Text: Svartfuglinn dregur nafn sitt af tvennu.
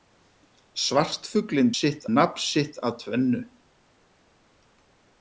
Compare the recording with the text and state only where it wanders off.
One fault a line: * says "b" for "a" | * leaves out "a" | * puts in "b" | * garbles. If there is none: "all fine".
* says "sitt" for "dregur"